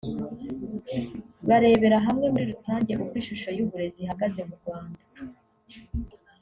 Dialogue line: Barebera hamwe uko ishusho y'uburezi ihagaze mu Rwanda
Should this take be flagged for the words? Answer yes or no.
yes